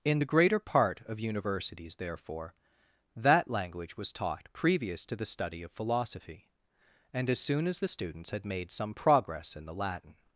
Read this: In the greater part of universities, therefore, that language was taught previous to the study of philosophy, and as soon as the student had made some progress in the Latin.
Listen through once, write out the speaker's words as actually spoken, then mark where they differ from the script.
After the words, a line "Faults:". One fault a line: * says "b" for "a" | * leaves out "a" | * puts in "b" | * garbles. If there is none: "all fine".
In the greater part of universities, therefore, that language was taught previous to the study of philosophy, and as soon as the students had made some progress in the Latin.
Faults:
* says "students" for "student"